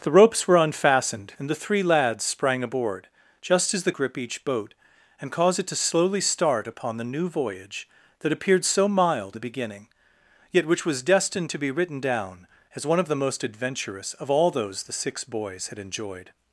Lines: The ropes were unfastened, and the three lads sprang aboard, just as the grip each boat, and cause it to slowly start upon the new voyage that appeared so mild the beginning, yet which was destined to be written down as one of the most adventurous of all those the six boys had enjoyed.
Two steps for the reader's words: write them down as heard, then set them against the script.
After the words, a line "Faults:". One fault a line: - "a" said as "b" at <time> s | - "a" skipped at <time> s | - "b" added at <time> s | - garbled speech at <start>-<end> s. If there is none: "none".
The ropes were unfastened, and the three lads sprang aboard, just as the grip each boat, and cause it to slowly start upon the new voyage that appeared so mild the beginning, yet which was destined to be written down as one of the most adventurous of all those the six boys had enjoyed.
Faults:
none